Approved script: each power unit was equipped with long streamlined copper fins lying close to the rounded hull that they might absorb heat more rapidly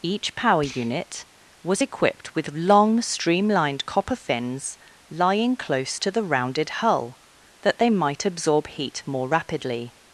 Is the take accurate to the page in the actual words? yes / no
yes